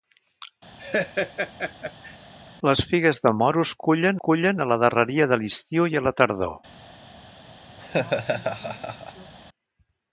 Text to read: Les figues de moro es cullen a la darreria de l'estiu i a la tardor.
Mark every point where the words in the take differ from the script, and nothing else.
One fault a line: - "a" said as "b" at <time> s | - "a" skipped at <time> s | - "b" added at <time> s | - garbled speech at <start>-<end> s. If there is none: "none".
- "cullen" added at 4.3 s